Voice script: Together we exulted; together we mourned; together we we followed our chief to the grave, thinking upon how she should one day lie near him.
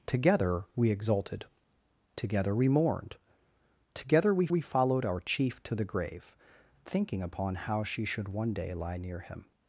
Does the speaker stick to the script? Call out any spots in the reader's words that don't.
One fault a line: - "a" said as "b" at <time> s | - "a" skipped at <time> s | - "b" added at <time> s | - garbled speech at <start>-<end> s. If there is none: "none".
none